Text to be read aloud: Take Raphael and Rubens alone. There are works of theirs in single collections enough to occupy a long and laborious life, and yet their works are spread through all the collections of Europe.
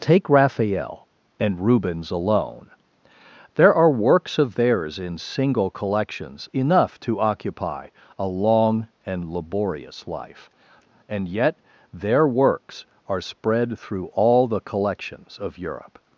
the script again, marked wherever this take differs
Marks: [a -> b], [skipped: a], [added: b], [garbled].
Take Raphael and Rubens alone. There are works of theirs in single collections enough to occupy a long and laborious life, and yet their works are spread through all the collections of Europe.